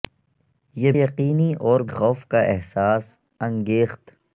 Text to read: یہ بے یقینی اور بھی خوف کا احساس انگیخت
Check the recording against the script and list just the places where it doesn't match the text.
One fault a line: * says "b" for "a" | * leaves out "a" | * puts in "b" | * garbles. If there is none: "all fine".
* leaves out "بے"
* leaves out "بھی"